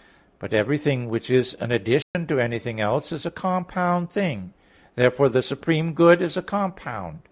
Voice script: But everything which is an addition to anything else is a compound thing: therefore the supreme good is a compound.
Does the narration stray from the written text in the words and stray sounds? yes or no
yes